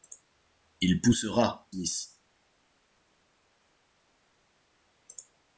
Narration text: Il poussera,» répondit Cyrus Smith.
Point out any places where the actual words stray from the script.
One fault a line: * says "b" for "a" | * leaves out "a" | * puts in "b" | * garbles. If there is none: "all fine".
* leaves out "répondit Cyrus"